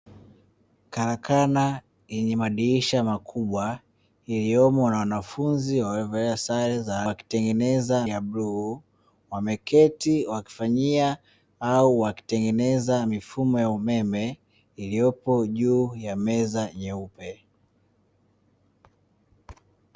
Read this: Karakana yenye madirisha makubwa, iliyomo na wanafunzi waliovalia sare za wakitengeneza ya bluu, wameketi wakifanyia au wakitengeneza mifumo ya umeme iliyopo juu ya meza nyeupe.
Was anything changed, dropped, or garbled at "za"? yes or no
no